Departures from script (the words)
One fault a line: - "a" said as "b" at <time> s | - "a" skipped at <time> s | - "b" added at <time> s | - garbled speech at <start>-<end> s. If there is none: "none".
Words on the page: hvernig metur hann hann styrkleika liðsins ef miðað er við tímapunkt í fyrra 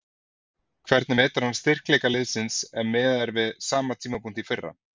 - "hann" skipped at 1.6 s
- "sama" added at 3.7 s